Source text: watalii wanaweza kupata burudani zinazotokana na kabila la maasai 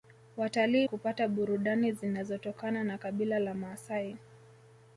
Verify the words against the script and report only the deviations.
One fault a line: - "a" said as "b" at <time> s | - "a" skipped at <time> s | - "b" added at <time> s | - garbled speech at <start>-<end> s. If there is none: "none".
- "wanaweza" skipped at 0.9 s